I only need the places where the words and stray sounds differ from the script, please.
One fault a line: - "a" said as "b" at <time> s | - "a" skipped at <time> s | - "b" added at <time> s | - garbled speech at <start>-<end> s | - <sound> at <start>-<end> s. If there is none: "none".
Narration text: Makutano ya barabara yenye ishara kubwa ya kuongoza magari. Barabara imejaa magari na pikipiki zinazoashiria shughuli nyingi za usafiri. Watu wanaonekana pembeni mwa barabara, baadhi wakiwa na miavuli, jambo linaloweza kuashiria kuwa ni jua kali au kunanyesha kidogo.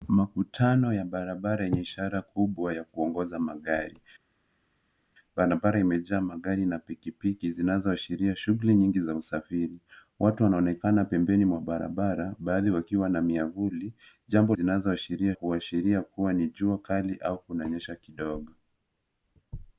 - "linaloweza" said as "zinazoashiria" at 14.5 s